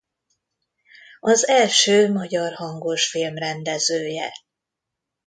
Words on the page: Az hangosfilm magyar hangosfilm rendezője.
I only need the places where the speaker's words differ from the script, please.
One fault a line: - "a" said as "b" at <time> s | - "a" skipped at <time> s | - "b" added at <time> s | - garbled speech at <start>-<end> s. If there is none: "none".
- "hangosfilm" said as "első" at 1.5 s